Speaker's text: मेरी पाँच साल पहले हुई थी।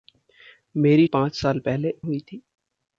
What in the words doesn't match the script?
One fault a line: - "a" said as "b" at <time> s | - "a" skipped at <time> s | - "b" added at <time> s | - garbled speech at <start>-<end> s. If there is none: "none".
none